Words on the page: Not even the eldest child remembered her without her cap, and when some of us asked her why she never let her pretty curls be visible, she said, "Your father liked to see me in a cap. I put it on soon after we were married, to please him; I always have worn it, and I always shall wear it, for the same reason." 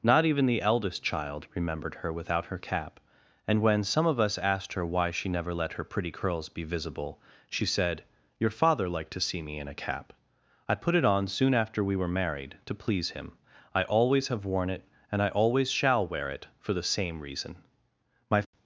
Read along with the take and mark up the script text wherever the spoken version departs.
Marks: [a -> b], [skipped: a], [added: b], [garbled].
Not even the eldest child remembered her without her cap, and when some of us asked her why she never let her pretty curls be visible, she said, "Your father liked to see me in a cap. I put it on soon after we were married, to please him; I always have worn it, and I always shall wear it, for the same reason." [added: My]